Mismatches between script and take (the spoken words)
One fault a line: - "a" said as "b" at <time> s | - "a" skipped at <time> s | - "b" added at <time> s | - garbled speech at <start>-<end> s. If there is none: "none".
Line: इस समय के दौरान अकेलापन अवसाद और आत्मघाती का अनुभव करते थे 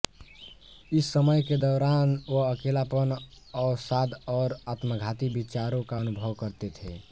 - "वह" added at 2.3 s
- "विचारों" added at 5.3 s